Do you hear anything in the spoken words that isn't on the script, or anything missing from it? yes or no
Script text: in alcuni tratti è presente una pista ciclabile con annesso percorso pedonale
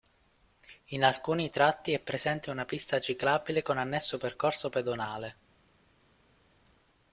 no